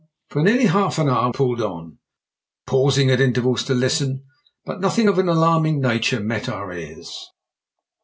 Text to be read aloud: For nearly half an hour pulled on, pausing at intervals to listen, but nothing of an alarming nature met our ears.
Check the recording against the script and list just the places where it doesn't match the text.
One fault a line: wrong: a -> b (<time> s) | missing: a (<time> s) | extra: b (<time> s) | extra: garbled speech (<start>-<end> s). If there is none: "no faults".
no faults